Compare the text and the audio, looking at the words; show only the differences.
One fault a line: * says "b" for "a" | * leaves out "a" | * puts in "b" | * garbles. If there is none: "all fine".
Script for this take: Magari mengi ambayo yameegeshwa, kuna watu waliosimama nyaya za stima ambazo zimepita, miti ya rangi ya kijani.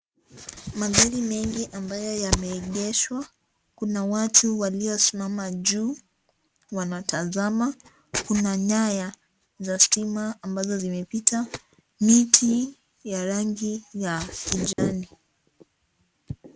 * puts in "juu wanatazama kuna"